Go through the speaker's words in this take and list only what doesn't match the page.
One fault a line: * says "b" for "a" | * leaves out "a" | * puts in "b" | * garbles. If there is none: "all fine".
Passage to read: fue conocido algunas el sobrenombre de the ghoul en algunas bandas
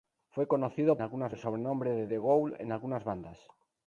all fine